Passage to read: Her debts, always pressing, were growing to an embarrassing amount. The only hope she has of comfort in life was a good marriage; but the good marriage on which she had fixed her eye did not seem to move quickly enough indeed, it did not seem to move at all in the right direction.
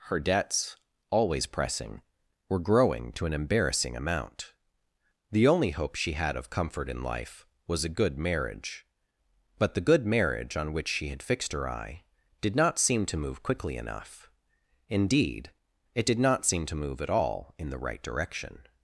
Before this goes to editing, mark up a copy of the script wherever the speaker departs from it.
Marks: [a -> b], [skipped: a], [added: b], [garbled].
Her debts, always pressing, were growing to an embarrassing amount. The only hope she [has -> had] of comfort in life was a good marriage; but the good marriage on which she had fixed her eye did not seem to move quickly enough indeed, it did not seem to move at all in the right direction.